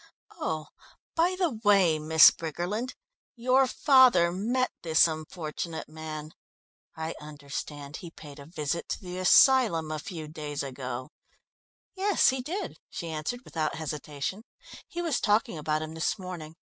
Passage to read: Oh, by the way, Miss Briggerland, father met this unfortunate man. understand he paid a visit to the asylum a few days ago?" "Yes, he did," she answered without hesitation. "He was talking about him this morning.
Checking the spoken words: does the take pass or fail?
fail